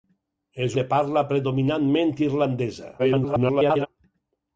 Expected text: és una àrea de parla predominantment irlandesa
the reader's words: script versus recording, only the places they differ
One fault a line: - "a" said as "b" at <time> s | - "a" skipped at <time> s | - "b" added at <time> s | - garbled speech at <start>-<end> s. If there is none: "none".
- "una àrea" skipped at 0.8 s
- garbled speech at 3.0-3.9 s